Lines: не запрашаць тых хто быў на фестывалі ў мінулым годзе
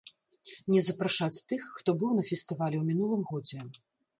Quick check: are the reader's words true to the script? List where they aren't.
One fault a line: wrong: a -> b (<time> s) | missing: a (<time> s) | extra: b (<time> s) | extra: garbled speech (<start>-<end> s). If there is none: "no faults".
no faults